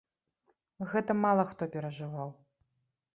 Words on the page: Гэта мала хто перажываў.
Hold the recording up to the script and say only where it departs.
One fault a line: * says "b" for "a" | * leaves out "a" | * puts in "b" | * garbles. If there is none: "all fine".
all fine